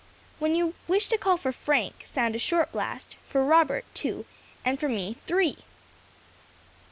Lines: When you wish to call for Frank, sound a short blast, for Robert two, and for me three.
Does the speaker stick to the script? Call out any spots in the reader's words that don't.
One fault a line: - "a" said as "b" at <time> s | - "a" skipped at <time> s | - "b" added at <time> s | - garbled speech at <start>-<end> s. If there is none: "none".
none